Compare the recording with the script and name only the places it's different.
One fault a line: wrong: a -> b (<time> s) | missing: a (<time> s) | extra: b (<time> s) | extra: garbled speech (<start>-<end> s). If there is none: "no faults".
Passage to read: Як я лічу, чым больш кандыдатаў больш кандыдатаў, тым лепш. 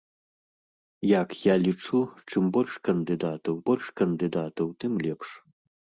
no faults